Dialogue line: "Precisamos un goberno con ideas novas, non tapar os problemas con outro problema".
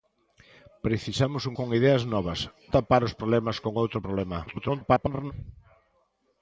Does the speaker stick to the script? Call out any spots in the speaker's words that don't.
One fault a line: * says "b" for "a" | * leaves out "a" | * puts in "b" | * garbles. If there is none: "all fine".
* leaves out "goberno"
* leaves out "non"
* garbles